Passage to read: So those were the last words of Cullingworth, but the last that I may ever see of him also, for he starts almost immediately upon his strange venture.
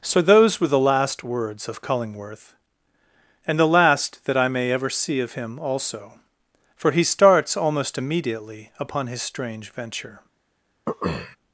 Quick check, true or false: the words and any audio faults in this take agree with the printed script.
false